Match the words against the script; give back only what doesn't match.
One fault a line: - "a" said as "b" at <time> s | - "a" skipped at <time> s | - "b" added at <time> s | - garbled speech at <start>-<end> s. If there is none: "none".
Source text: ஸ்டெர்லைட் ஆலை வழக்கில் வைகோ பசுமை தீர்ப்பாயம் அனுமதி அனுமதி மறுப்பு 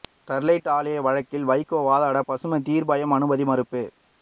- "வாதாட" added at 1.9 s
- "அனுமதி" skipped at 3.5 s